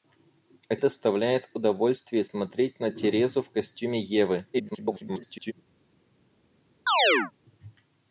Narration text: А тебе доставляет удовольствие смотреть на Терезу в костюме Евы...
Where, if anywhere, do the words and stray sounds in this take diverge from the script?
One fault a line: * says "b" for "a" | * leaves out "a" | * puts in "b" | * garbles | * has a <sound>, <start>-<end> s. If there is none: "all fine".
* leaves out "тебе"
* garbles
* has a chirp, 6.9-7.3 s